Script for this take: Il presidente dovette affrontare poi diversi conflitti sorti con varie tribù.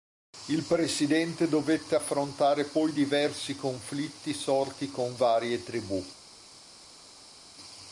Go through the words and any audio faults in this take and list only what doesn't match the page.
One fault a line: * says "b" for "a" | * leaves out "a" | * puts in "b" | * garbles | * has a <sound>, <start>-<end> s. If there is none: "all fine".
all fine